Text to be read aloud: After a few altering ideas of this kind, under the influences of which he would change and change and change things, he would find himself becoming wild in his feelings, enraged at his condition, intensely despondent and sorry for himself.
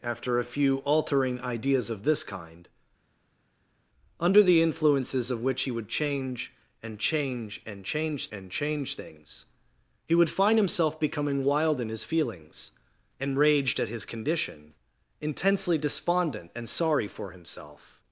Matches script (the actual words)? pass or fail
fail